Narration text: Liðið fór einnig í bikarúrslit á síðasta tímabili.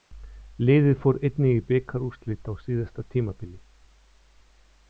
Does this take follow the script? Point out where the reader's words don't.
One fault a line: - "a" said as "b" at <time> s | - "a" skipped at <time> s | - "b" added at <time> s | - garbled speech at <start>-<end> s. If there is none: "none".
none